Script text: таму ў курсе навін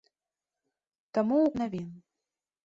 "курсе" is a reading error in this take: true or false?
true